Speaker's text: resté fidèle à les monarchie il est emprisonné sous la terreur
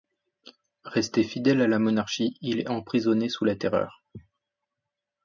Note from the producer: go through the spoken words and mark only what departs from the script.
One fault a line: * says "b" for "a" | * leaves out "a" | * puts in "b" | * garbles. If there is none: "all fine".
* says "la" for "les"